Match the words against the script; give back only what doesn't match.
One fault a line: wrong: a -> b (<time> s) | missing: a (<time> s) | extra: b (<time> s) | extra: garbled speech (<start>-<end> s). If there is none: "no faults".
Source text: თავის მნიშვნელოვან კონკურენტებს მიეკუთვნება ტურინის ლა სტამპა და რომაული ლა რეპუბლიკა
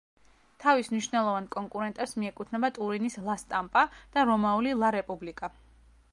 no faults